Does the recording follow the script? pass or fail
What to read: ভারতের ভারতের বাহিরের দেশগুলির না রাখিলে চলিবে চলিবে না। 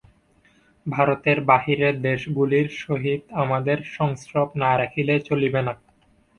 fail